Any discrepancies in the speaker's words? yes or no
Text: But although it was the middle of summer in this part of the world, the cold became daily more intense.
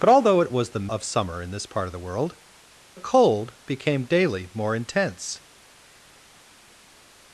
yes